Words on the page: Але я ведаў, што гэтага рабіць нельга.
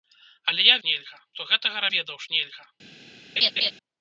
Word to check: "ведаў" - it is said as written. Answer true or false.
false